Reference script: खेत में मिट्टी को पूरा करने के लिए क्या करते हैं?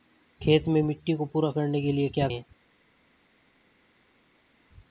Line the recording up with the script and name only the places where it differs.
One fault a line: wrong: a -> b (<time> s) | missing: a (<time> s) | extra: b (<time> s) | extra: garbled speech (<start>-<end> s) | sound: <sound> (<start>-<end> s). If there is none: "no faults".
missing: करते (2.3 s)